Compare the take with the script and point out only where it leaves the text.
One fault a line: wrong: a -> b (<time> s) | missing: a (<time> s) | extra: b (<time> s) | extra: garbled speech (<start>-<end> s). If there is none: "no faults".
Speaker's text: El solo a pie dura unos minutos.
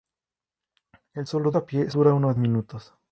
no faults